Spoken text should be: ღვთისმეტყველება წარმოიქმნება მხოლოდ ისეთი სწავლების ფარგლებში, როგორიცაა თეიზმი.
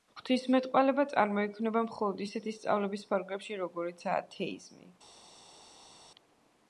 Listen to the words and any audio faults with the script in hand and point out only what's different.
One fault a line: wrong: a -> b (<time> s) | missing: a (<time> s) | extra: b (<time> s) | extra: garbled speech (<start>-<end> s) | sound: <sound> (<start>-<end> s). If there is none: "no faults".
no faults